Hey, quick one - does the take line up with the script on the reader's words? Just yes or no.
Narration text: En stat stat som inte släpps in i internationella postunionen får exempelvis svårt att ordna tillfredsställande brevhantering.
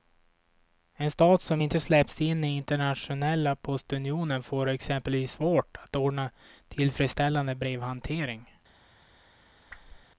no